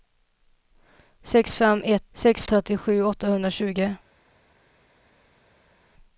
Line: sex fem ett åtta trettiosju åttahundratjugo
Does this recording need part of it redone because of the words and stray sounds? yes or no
yes